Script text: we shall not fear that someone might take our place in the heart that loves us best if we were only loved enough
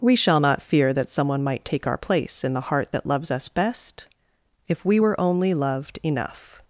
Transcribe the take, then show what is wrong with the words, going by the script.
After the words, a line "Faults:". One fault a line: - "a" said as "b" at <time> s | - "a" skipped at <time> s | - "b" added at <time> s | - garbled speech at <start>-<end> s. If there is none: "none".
we shall not fear that someone might take our place in the heart that loves us best if we were only loved enough
Faults:
none